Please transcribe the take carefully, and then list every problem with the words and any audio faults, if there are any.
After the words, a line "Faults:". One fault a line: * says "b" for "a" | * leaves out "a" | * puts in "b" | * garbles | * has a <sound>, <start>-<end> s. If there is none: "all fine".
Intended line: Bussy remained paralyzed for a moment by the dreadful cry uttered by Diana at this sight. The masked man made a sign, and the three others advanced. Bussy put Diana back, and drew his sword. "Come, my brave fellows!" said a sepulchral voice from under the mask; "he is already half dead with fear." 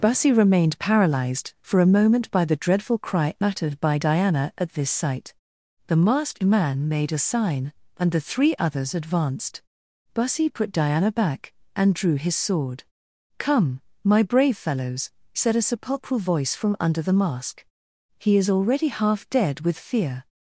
Bussy remained paralyzed for a moment by the dreadful cry uttered by Diana at this sight. The masked man made a sign, and the three others advanced. Bussy put Diana back, and drew his sword. "Come, my brave fellows!" said a sepulchral voice from under the mask; "he is already half dead with fear."
Faults:
all fine